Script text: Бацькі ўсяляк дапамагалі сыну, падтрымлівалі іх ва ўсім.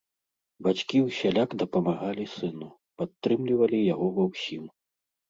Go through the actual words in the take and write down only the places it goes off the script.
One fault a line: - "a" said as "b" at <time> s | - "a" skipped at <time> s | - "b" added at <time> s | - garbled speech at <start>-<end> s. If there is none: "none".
- "іх" said as "яго" at 3.9 s